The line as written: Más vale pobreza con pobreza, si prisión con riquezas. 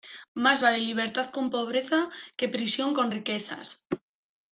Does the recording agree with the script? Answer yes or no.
no